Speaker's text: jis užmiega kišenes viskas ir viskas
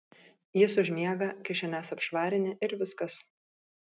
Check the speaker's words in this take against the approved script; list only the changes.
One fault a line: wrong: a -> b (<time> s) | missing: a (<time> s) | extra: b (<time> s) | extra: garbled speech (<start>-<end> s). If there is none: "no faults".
wrong: viskas -> apšvarini (2.0 s)